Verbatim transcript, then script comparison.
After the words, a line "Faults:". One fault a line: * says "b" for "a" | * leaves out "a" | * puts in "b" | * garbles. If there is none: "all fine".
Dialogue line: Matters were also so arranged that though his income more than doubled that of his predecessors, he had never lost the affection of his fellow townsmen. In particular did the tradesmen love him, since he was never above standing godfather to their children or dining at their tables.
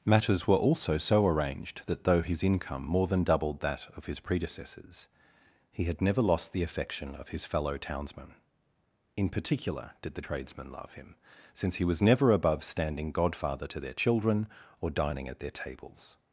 Matters were also so arranged that though his income more than doubled that of his predecessors, he had never lost the affection of his fellow townsmen. In particular did the tradesmen love him, since he was never above standing godfather to their children or dining at their tables.
Faults:
all fine